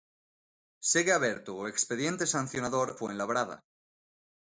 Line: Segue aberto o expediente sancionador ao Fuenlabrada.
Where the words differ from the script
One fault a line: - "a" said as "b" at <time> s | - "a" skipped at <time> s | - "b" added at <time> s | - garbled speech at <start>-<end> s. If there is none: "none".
- "ao" skipped at 2.9 s